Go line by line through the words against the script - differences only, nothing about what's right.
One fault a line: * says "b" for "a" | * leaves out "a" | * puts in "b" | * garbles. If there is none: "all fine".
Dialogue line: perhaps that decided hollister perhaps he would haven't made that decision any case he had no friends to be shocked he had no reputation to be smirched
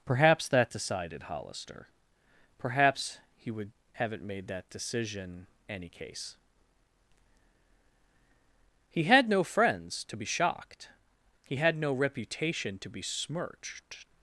all fine